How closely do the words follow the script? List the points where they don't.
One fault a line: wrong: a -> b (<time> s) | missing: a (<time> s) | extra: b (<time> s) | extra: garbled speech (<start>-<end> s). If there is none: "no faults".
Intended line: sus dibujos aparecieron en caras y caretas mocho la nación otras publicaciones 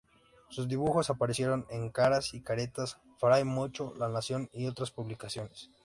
extra: fray (3.2 s)
extra: y (4.5 s)